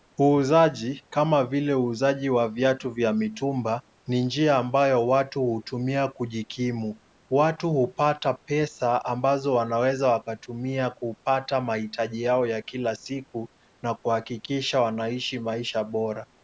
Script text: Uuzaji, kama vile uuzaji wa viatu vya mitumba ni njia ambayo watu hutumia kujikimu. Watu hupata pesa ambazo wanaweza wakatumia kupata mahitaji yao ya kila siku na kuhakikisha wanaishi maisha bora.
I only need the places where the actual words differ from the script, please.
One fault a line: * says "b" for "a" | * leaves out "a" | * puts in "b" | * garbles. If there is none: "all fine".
all fine